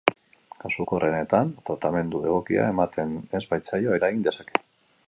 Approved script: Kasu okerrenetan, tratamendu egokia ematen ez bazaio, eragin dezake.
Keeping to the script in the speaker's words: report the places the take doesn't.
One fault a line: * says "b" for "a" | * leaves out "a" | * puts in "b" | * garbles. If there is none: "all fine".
all fine